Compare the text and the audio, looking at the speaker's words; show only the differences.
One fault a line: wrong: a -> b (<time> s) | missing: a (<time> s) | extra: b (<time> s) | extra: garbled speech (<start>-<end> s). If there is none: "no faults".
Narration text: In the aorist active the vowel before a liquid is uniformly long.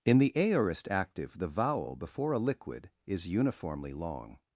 no faults